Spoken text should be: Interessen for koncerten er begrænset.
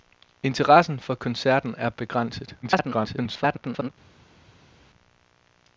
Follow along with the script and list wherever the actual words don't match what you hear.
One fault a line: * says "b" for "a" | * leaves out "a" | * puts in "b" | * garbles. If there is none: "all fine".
* garbles